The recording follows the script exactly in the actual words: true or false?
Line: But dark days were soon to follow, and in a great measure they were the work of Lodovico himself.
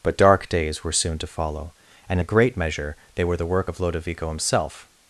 false